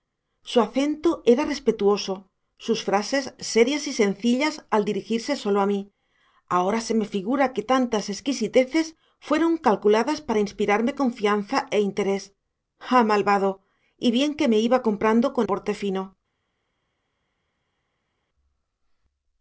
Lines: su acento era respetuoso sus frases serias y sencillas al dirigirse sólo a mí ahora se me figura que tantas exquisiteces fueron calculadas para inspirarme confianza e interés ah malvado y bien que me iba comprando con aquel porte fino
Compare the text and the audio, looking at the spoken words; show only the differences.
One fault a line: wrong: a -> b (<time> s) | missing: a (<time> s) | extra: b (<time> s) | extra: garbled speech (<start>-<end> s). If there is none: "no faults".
missing: aquel (15.4 s)